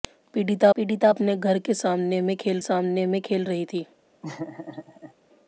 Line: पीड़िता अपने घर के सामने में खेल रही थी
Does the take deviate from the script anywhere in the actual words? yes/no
yes